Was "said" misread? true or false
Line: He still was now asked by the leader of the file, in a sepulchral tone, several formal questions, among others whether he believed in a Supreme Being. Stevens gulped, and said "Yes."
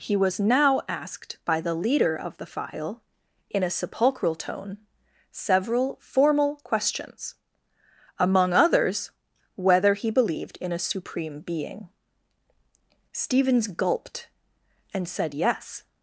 false